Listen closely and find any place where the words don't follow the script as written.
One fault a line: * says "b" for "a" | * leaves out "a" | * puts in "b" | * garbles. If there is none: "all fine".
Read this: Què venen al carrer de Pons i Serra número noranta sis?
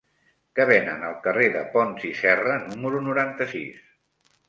all fine